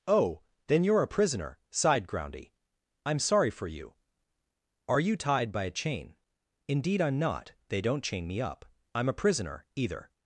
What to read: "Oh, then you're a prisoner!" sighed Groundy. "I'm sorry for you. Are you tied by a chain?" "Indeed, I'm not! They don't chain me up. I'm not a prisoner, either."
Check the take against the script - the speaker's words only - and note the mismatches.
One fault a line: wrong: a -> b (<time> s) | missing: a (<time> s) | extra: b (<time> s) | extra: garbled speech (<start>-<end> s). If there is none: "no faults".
missing: not (9.1 s)